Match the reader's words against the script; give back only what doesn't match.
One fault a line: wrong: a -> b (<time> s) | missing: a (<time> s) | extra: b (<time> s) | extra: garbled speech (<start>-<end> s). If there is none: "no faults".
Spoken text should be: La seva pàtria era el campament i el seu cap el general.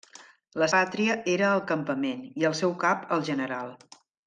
missing: seva (0.7 s)